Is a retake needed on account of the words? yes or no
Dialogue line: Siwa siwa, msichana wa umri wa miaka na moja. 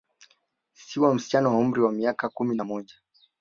yes